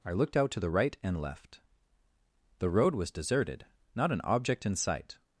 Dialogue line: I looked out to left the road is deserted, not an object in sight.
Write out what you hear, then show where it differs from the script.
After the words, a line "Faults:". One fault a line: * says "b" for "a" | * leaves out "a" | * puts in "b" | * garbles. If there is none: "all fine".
I looked out to the right and left the road was deserted, not an object in sight.
Faults:
* puts in "the right and"
* says "was" for "is"